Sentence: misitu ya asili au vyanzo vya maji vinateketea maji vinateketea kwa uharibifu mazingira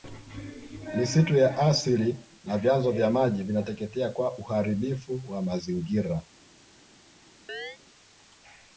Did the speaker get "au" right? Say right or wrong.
wrong